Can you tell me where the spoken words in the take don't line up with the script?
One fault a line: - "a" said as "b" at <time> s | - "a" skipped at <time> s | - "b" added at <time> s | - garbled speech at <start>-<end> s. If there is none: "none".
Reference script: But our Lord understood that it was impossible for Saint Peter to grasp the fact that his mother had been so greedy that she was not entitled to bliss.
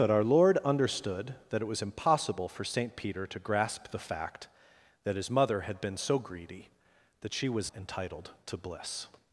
- "not" skipped at 7.7 s